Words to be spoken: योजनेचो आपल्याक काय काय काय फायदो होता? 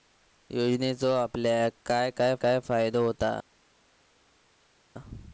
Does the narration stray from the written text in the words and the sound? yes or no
no